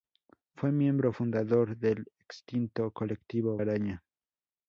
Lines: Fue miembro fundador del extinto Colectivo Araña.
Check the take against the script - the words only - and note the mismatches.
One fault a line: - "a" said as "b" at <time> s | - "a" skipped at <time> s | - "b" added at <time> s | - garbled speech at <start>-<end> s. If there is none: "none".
none